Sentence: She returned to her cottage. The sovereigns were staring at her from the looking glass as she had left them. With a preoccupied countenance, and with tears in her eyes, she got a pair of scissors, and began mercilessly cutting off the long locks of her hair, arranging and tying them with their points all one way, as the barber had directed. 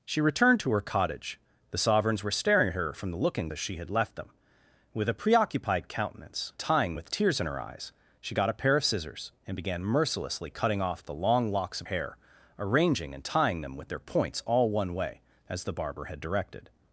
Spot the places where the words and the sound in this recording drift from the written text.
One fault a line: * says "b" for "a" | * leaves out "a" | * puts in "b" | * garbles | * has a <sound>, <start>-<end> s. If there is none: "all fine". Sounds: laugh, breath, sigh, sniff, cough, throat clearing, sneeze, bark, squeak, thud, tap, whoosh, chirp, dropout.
* leaves out "glass"
* says "tying" for "and"
* leaves out "her"